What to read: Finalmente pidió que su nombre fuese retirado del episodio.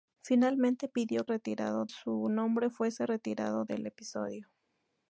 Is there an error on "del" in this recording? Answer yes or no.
no